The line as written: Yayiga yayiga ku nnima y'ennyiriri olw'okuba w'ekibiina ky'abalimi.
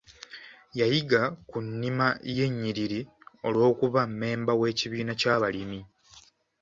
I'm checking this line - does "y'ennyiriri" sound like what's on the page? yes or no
yes